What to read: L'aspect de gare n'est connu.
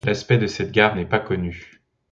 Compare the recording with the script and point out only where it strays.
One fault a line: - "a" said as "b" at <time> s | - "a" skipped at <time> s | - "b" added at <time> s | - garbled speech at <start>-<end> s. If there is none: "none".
- "cette" added at 0.5 s
- "pas" added at 1.1 s